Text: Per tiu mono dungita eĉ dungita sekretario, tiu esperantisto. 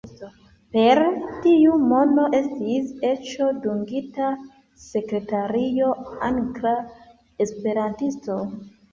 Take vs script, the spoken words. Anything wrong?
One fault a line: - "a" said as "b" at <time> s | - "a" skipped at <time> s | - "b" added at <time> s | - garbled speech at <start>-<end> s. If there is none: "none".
- "dungita" said as "estis" at 2.4 s
- "tiu" said as "angla" at 6.3 s